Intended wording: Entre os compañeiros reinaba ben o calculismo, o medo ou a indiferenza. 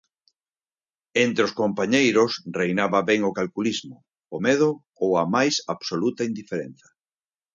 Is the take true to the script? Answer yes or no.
no